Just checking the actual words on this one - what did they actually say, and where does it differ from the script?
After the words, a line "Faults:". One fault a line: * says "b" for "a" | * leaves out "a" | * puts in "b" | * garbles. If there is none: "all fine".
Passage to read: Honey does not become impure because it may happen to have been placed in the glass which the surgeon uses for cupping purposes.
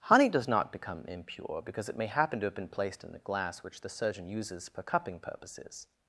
Honey does not become impure because it may happen to have been placed in the glass which the surgeon uses for cupping purposes.
Faults:
all fine